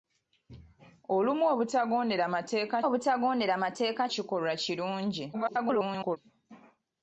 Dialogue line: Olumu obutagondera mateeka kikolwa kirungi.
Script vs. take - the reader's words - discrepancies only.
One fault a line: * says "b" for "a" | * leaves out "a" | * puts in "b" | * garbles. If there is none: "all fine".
* puts in "obutagondera mateeka"
* garbles